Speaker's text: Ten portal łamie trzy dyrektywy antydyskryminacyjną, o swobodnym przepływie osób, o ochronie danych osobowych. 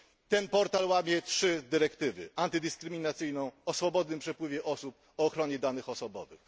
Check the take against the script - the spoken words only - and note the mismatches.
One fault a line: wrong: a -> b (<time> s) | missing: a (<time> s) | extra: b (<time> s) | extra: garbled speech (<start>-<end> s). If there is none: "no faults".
no faults